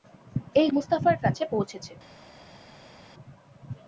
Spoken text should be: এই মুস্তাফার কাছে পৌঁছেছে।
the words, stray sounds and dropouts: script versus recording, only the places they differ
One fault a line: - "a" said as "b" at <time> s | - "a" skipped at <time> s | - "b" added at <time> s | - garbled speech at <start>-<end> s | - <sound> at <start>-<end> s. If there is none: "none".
none